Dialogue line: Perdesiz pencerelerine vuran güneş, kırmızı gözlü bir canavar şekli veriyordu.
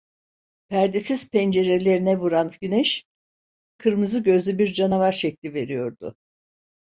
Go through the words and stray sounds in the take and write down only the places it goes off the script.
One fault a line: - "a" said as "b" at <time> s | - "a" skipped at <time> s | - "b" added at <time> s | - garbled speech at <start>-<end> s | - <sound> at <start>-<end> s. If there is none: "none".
none